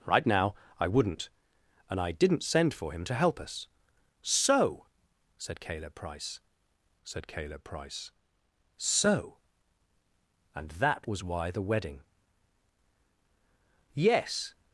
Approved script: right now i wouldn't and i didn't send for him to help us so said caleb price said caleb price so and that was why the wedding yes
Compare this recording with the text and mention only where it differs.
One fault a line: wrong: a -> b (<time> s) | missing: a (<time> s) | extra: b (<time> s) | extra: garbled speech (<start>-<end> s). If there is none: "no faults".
no faults